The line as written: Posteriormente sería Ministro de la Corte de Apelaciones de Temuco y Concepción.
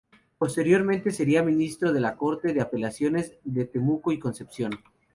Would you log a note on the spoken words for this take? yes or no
no